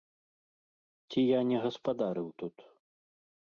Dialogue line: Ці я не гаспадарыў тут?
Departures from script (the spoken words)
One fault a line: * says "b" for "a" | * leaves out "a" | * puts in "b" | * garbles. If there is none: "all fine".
all fine